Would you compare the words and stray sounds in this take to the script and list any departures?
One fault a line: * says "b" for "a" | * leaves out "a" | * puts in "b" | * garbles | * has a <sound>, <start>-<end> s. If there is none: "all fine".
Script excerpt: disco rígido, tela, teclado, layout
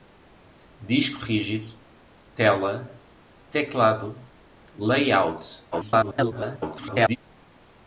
* garbles